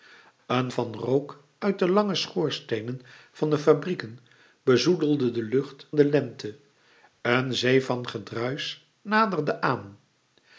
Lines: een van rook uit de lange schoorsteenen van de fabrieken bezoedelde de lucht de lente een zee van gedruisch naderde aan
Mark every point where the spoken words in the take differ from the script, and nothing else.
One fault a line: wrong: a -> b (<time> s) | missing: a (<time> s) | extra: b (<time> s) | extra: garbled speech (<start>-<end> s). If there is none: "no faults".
no faults